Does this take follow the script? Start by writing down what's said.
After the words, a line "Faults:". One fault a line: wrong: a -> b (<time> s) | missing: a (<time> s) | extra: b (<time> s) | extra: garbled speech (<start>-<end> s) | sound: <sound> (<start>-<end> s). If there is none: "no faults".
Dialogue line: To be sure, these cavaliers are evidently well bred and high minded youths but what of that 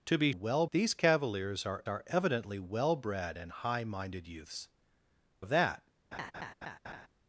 To be well, these cavaliers are are evidently well bred and high minded youths of that
Faults:
wrong: sure -> well (0.3 s)
extra: are (1.9 s)
missing: but what (4.7 s)
sound: laugh (6.1-7.1 s)